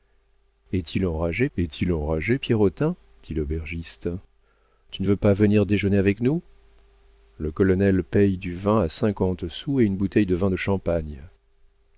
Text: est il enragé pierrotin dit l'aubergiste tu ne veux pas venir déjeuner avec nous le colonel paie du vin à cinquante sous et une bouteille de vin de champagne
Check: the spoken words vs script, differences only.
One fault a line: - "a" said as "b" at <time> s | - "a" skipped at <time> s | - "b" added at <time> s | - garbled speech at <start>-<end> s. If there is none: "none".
- "est il enragé" added at 1.6 s